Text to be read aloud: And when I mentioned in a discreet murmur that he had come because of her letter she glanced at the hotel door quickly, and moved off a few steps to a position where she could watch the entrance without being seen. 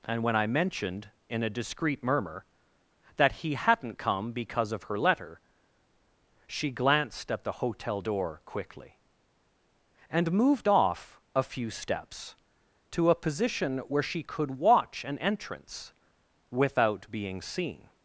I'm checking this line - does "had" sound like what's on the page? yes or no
no